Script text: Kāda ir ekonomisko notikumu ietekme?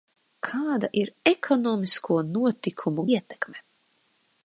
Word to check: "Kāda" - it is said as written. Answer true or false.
true